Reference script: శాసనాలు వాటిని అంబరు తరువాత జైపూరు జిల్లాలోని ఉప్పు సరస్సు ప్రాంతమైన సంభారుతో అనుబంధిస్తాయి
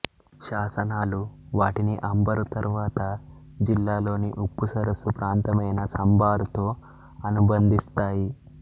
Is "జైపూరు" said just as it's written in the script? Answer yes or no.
no